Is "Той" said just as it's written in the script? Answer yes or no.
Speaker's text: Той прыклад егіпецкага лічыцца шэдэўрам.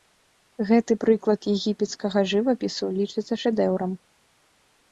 no